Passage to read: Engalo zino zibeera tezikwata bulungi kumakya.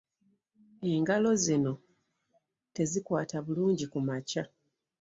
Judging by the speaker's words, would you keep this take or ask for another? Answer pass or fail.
fail